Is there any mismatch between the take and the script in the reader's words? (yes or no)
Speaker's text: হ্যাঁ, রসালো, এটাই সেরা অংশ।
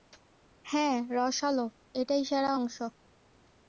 no